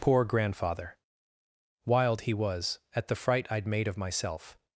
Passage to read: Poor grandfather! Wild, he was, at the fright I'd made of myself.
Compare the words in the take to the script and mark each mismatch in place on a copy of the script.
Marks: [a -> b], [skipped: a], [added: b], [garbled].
Poor grandfather! Wild, he was, at the fright I'd made of myself.